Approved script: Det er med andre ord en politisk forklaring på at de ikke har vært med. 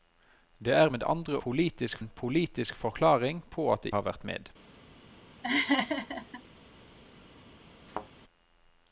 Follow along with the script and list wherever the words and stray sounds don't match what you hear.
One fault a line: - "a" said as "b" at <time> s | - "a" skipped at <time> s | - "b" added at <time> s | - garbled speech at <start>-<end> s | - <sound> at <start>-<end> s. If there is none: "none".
- "ord" said as "politisk" at 1.4 s
- "ikke" skipped at 3.9 s
- laugh at 5.4-6.4 s
- thud at 7.9-8.1 s